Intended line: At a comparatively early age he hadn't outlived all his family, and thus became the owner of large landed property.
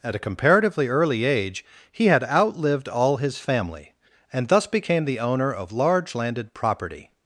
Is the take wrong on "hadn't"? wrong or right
wrong